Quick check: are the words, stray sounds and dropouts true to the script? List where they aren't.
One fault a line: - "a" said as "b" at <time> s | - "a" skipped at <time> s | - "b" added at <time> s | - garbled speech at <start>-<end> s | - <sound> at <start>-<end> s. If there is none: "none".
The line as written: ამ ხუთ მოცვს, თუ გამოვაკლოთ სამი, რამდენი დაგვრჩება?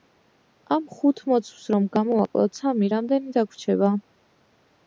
- "თუ" said as "რომ" at 1.8 s